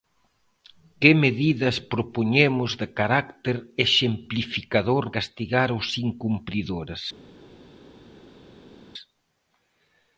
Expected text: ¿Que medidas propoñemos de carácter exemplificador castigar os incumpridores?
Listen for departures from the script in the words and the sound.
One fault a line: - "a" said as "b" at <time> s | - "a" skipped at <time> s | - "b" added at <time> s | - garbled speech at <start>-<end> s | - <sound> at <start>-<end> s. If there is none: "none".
none